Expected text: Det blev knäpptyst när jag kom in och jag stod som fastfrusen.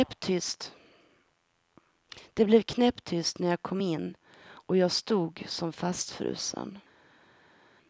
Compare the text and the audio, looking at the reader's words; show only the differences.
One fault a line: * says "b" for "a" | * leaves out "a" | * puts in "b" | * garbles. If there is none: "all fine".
all fine